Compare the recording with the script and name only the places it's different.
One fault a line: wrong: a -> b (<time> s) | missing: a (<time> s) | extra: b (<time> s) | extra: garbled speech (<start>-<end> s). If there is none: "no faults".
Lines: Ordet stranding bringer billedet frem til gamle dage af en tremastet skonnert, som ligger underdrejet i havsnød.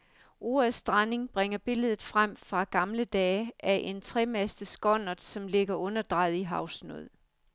wrong: til -> fra (2.3 s)